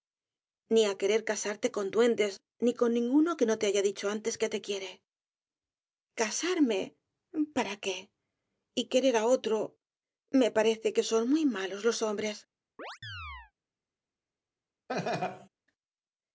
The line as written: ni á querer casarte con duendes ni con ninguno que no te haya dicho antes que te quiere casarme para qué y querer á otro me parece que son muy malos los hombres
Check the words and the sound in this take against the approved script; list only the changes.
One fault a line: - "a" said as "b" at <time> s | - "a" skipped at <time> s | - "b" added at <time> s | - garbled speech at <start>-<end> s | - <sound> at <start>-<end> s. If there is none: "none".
- chirp at 12.8-13.5 s
- laugh at 14.9-15.5 s